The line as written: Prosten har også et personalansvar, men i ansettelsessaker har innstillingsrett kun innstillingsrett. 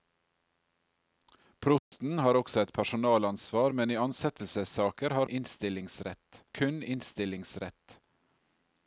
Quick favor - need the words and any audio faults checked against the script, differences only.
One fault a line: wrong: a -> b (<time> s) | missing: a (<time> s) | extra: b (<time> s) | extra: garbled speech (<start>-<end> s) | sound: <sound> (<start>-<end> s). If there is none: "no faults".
sound: dropout (1.8-1.9 s)